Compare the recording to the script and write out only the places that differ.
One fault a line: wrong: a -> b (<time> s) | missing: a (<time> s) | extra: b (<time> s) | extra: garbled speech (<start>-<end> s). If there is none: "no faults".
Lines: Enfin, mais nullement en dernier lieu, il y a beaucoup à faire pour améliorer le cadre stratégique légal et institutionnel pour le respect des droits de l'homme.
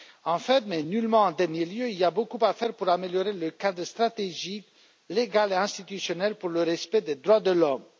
no faults